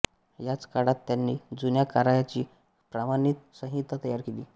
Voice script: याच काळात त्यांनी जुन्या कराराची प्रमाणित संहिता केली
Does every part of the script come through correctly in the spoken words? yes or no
no